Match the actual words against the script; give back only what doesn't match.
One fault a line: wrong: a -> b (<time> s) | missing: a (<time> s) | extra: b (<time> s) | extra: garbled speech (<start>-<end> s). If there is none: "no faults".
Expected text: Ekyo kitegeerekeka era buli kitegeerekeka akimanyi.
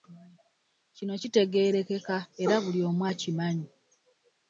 wrong: Ekyo -> Kino (0.9 s)
wrong: kitegeerekeka -> omu (2.9 s)